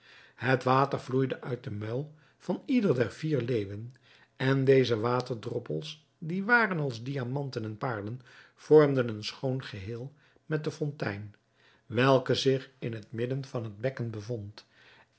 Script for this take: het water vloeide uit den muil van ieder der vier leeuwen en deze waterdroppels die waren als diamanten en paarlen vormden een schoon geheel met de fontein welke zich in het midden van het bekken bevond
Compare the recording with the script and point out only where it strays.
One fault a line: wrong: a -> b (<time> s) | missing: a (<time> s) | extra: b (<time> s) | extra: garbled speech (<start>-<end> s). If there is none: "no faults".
no faults